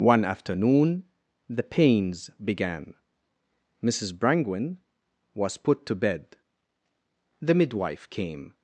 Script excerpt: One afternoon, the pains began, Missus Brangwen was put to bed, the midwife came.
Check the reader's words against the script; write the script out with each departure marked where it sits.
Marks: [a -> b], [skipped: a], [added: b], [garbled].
One afternoon, the pains began, Missus Brangwen was put to bed, the midwife came.